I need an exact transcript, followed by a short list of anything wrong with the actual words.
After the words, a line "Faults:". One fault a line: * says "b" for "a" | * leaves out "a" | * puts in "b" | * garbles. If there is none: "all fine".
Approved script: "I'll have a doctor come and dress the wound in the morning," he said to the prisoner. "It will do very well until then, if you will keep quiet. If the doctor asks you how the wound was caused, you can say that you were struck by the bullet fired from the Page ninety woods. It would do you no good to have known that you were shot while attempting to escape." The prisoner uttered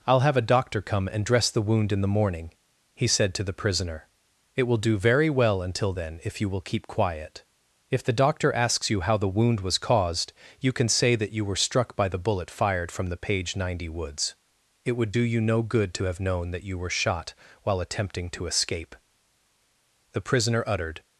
"I'll have a doctor come and dress the wound in the morning," he said to the prisoner. "It will do very well until then, if you will keep quiet. If the doctor asks you how the wound was caused, you can say that you were struck by the bullet fired from the Page ninety woods. It would do you no good to have known that you were shot while attempting to escape." The prisoner uttered
Faults:
all fine